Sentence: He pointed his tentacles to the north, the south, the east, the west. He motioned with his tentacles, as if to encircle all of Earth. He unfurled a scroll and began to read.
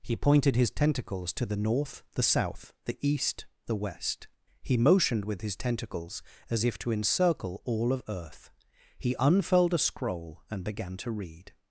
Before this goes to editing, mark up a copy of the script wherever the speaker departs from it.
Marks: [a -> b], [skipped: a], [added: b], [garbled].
He pointed his tentacles to the north, the south, the east, the west. He motioned with his tentacles, as if to encircle all of Earth. He unfurled a scroll and began to read.